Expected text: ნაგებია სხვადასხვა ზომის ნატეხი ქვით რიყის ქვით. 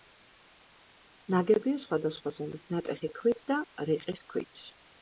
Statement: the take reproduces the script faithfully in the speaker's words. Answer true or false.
false